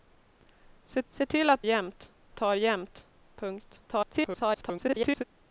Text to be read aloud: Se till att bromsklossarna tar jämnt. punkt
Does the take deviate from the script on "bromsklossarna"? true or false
true